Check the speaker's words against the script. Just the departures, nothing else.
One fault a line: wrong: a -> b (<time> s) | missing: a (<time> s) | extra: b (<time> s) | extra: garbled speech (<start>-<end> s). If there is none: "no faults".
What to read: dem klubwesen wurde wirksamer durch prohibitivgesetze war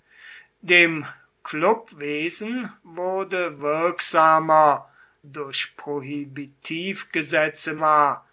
no faults